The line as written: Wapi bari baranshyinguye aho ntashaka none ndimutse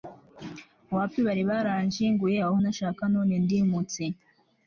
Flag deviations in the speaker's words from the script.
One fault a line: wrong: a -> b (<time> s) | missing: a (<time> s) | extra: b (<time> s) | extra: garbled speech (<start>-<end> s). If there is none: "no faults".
no faults